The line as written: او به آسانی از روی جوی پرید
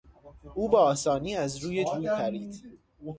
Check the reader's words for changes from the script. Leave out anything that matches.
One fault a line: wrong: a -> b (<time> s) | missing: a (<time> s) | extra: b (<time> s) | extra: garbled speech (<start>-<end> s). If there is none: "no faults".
no faults